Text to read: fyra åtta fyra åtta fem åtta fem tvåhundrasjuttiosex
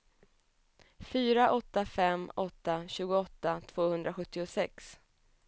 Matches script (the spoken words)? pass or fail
fail